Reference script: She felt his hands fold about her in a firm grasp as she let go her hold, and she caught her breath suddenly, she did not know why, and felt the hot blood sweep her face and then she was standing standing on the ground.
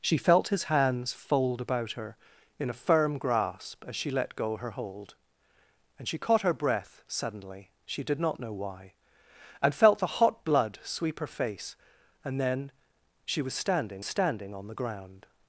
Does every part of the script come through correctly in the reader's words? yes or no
yes